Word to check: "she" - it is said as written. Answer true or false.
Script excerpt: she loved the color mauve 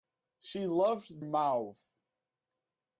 true